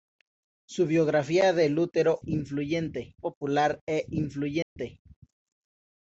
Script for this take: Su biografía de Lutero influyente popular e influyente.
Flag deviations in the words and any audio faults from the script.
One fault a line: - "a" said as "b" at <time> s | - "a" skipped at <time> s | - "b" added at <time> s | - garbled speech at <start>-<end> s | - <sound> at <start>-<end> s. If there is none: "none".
- dropout at 4.6-4.8 s